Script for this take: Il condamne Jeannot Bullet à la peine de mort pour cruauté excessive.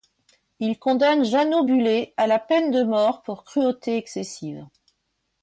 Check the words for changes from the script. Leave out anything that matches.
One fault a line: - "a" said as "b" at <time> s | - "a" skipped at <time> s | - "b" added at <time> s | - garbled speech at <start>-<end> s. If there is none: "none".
none